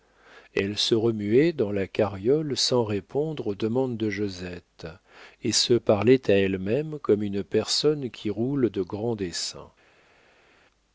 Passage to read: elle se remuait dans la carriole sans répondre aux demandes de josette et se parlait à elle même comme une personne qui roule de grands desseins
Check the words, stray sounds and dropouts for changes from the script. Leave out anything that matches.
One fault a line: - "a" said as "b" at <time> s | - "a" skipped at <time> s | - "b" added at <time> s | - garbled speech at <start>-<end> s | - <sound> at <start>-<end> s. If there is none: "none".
none